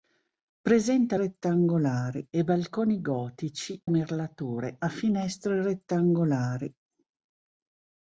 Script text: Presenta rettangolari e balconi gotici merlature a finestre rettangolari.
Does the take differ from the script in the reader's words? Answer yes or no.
no